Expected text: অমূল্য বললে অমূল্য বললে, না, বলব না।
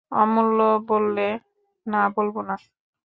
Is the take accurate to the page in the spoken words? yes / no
no